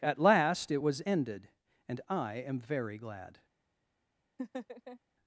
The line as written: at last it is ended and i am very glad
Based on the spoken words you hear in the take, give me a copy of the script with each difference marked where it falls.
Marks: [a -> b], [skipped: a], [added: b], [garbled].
at last it [is -> was] ended and i am very glad